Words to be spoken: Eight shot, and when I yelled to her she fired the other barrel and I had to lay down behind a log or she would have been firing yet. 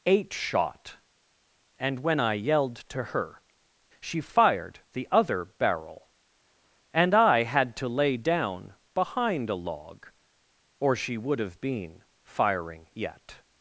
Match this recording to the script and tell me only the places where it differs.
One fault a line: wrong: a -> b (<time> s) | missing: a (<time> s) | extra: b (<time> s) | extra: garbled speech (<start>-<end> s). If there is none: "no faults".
no faults